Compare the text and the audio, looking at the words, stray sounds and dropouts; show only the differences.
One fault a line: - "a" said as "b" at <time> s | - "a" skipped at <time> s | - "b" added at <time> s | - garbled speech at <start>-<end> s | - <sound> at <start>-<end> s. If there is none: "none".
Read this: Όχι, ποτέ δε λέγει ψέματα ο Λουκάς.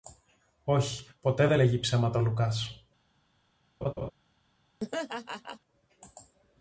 - laugh at 3.8-4.1 s
- laugh at 4.8-5.6 s